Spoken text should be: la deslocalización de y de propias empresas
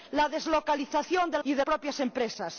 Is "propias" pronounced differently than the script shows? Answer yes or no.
no